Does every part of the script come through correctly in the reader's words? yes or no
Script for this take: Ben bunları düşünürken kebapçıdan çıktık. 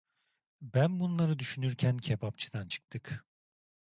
yes